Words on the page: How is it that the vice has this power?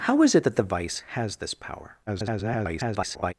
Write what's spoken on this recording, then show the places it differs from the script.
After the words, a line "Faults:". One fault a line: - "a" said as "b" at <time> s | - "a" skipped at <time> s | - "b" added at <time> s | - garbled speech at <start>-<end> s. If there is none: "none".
How is it that the vice has this power? [garbled]
Faults:
- garbled speech at 2.1-3.3 s